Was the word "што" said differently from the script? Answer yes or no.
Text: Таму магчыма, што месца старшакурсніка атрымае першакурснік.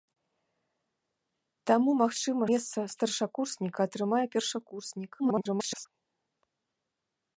yes